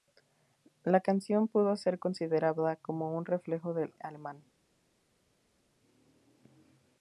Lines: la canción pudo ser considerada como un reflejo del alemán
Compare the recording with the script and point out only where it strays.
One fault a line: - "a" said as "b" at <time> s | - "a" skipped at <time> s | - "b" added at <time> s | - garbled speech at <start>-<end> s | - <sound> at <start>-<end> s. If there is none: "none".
none